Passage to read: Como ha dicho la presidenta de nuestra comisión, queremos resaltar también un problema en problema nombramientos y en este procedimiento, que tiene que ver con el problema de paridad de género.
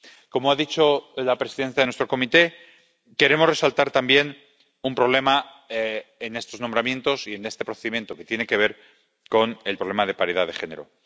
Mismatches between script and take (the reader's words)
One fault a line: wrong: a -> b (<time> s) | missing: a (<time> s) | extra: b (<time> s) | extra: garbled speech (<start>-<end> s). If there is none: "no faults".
wrong: problema -> estos (6.4 s)